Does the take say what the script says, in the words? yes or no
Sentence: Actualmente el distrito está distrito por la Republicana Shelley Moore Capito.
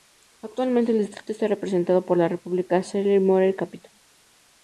no